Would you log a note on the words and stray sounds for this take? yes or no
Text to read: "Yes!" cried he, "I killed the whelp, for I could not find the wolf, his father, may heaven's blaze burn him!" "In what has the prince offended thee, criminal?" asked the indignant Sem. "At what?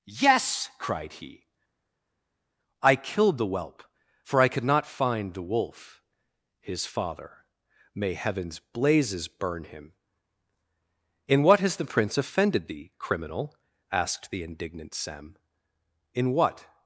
yes